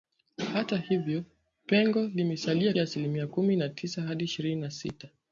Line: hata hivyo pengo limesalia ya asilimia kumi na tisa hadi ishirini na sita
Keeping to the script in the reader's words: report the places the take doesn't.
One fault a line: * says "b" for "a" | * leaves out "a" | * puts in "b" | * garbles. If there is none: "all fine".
all fine